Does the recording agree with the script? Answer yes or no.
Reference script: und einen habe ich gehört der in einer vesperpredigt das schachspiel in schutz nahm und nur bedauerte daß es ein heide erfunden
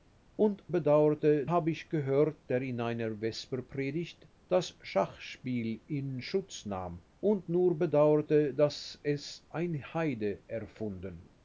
no